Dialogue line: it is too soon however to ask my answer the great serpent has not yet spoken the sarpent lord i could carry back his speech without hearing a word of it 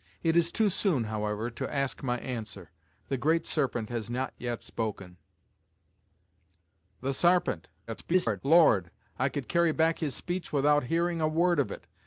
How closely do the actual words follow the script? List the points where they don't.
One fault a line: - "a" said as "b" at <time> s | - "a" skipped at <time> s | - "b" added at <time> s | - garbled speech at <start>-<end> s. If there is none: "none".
- garbled speech at 7.9-8.4 s